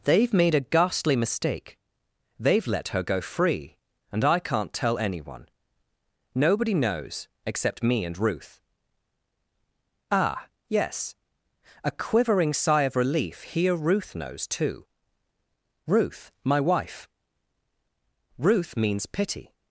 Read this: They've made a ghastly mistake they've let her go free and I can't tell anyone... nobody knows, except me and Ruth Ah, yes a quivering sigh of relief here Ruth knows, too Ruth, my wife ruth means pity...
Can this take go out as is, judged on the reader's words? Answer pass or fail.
pass